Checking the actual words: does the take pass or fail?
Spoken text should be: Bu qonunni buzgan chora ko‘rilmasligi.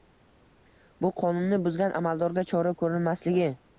fail